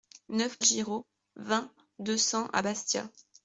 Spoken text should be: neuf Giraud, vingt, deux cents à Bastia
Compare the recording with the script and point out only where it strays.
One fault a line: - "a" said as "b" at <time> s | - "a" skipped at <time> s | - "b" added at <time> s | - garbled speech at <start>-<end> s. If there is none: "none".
none